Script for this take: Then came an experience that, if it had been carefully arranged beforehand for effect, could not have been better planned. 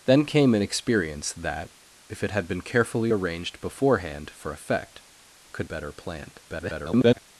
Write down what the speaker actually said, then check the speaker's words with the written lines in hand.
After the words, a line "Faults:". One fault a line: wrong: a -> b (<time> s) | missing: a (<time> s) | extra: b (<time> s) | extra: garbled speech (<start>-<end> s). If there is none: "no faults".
Then came an experience that, if it had been carefully arranged beforehand for effect, could better planned. [garbled]
Faults:
missing: not have been (5.7 s)
extra: garbled speech (6.5-7.2 s)